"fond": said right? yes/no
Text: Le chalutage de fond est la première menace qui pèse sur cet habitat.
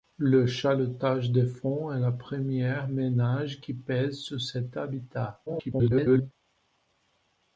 yes